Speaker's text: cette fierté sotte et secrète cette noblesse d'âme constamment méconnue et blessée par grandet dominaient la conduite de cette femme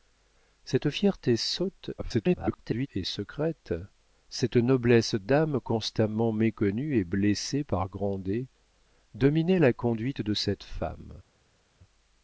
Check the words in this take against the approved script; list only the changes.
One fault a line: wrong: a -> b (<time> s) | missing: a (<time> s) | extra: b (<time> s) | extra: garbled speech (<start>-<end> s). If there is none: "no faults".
extra: garbled speech (2.0-2.9 s)